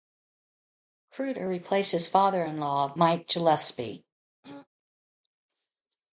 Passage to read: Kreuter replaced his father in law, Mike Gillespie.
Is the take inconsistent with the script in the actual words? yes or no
no